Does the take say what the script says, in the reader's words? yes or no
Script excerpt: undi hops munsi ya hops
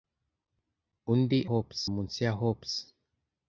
yes